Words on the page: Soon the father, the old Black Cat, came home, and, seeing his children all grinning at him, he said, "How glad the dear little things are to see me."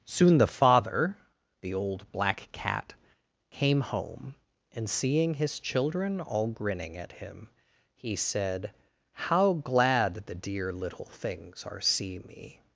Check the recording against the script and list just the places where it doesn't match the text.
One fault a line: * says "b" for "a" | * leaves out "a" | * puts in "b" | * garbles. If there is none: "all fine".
* leaves out "to"